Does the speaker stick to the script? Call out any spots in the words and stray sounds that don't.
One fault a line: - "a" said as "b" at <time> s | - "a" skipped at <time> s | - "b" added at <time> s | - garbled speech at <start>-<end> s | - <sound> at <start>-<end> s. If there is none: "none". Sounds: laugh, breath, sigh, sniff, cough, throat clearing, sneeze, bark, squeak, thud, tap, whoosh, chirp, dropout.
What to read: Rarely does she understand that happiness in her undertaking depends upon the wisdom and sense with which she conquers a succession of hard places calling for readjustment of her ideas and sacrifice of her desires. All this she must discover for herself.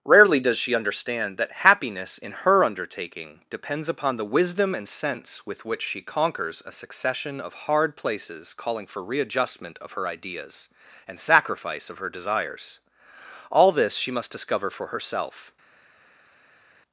none